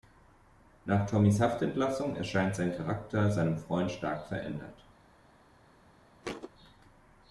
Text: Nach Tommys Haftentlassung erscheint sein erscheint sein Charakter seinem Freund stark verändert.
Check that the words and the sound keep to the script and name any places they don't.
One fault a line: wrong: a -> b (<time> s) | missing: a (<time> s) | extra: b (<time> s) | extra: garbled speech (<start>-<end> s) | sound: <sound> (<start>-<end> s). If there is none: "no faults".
missing: erscheint sein (2.8 s)
sound: thud (6.2-6.5 s)